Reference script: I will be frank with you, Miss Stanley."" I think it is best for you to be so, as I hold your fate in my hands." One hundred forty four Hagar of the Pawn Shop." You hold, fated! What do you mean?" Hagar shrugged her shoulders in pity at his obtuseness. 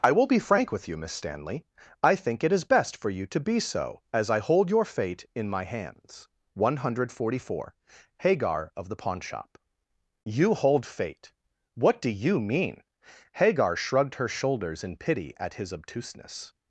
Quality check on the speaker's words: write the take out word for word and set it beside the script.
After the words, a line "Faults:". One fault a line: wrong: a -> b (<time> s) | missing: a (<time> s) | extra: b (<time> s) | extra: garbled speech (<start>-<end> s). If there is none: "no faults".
I will be frank with you, Miss Stanley."" I think it is best for you to be so, as I hold your fate in my hands." One hundred forty four Hagar of the Pawn Shop." You hold, fate! What do you mean?" Hagar shrugged her shoulders in pity at his obtuseness.
Faults:
wrong: fated -> fate (10.9 s)